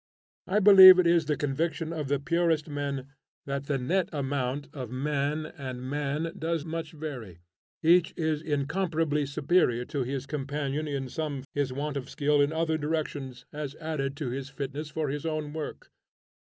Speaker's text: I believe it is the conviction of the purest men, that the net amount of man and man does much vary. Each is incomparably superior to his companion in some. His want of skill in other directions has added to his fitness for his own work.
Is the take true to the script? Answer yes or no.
yes